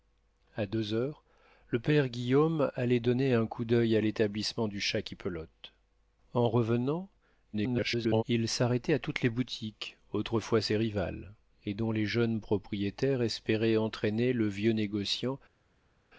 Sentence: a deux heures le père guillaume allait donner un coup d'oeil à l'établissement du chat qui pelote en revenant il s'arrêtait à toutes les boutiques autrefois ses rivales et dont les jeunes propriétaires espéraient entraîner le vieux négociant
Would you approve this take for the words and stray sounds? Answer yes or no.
no